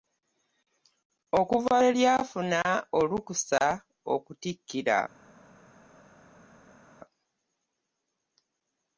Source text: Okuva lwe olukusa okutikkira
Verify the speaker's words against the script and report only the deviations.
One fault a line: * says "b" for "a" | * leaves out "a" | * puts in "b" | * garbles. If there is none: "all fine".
* puts in "lyafuna"